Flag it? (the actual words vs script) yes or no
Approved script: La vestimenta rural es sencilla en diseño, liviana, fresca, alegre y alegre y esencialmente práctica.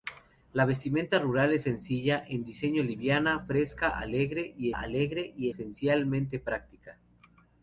no